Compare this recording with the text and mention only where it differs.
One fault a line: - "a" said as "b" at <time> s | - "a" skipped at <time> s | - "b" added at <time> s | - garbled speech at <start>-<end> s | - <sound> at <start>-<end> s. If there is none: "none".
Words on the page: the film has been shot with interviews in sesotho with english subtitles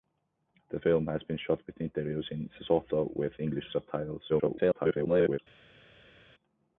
- garbled speech at 4.3-5.4 s